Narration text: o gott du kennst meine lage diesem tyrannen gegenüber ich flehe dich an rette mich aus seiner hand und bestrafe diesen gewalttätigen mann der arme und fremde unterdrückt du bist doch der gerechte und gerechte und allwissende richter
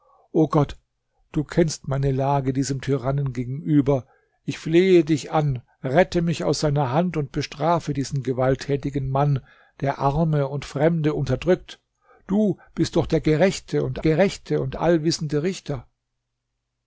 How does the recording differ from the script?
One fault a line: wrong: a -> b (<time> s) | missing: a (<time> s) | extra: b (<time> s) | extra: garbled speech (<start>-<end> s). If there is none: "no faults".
no faults